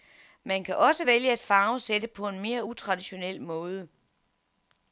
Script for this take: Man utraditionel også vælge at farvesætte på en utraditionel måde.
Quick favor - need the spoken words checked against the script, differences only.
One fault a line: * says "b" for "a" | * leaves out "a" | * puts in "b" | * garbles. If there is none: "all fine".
* says "kan" for "utraditionel"
* puts in "mere"